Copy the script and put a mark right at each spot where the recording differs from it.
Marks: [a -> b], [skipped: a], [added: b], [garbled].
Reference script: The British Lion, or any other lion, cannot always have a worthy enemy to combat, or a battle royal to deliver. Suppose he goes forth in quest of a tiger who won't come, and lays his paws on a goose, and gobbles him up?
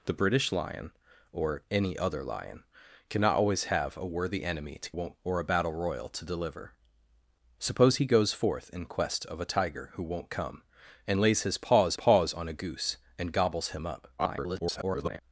The British Lion, or any other lion, cannot always have a worthy enemy to [combat, -> won't] or a battle royal to deliver. Suppose he goes forth in quest of a tiger who won't come, and lays his paws [added: paws] on a goose, and gobbles him up? [garbled]